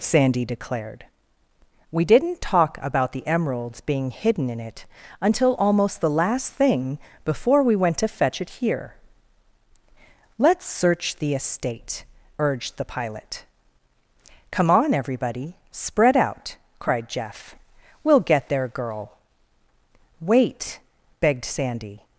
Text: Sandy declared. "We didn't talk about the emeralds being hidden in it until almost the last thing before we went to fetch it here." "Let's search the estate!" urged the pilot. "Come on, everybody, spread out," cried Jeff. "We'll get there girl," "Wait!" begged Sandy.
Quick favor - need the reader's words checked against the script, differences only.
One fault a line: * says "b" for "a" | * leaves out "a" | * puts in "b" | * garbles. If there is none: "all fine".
all fine